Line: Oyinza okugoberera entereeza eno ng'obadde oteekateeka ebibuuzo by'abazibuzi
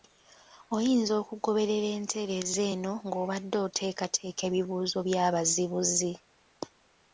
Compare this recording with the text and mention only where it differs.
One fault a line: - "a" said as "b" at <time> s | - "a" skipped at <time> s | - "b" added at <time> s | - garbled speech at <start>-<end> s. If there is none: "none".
none